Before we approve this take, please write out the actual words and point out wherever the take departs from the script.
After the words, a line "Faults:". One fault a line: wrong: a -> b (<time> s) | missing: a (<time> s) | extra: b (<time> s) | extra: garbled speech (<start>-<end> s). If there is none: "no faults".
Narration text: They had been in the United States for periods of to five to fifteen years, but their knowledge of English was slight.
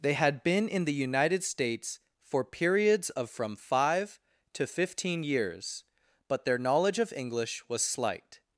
They had been in the United States for periods of from five to fifteen years, but their knowledge of English was slight.
Faults:
wrong: to -> from (3.3 s)